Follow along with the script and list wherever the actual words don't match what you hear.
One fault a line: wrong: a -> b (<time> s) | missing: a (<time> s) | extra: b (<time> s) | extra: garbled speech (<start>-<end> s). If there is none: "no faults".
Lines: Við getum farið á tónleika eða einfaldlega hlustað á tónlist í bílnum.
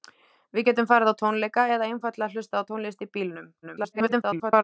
extra: garbled speech (3.6-4.6 s)